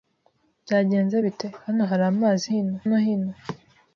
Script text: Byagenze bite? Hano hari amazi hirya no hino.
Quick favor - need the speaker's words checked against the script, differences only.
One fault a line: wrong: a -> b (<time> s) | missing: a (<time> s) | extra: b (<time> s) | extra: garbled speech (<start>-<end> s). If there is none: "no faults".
wrong: hirya -> hino (2.5 s)